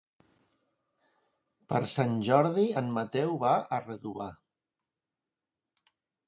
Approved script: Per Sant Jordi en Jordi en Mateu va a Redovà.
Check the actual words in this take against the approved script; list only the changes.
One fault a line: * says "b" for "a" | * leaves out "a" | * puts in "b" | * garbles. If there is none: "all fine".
* leaves out "Jordi en"